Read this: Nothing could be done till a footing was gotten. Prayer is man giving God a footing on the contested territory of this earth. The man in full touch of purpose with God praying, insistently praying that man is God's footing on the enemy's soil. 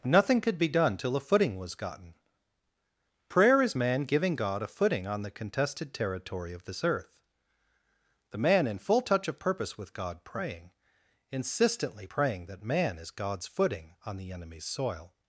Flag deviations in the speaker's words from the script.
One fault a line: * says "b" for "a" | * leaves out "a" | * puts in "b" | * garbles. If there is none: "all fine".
all fine